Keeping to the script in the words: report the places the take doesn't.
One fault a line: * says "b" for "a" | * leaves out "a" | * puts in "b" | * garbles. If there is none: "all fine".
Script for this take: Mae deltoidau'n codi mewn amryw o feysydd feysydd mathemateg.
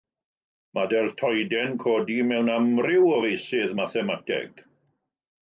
* leaves out "feysydd"